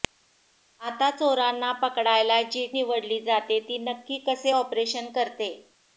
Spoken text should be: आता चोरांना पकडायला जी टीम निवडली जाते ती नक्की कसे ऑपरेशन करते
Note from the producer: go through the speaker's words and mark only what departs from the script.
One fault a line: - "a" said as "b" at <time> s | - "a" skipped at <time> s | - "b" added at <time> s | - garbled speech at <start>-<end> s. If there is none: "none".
- "टीम" skipped at 2.6 s